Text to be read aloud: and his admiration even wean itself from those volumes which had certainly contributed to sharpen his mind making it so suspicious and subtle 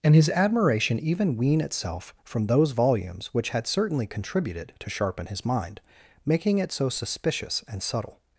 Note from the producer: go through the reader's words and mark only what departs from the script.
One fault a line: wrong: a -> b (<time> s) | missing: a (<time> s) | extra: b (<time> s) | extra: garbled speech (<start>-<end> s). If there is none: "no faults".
no faults